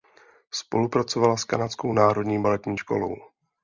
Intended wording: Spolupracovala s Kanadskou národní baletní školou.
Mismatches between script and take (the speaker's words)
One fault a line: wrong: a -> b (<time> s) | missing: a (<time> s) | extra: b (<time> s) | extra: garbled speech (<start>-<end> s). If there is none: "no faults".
no faults